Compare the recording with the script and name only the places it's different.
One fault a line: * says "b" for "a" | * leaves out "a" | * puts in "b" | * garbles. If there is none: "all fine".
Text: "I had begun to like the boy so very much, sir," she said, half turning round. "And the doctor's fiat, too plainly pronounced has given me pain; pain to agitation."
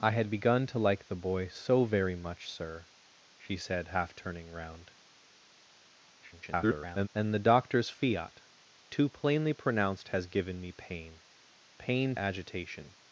* garbles
* leaves out "to"